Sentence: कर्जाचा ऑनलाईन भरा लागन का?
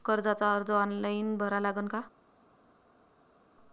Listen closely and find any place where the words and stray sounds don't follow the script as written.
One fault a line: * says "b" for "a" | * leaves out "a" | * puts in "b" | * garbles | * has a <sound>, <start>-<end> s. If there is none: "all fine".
* puts in "अर्ज"